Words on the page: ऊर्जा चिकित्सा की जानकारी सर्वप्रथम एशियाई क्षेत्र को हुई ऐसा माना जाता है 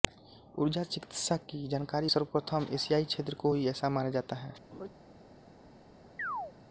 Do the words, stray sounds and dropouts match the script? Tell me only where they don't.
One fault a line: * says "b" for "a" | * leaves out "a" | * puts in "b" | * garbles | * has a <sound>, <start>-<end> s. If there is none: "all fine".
* has a laugh, 4.7-4.9 s
* has a chirp, 6.2-6.5 s